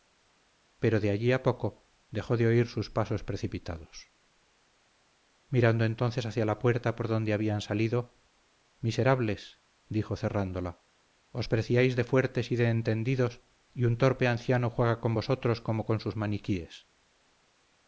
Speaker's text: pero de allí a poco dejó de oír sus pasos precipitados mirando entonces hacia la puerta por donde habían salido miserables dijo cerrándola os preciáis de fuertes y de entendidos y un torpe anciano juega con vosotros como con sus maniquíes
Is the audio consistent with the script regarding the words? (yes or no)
yes